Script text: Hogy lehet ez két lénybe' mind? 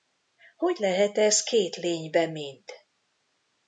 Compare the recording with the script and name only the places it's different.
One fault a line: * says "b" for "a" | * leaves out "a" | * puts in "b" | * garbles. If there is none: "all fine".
all fine